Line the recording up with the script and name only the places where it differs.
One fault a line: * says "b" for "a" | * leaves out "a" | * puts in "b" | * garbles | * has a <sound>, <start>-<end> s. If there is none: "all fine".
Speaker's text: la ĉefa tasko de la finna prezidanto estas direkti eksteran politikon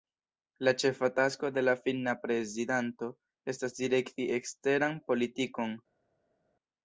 all fine